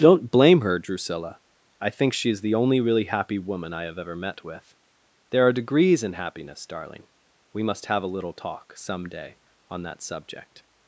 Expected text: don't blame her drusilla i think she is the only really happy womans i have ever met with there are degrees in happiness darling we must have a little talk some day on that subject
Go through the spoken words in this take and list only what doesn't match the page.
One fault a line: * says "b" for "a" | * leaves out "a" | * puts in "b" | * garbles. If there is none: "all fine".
* says "woman" for "womans"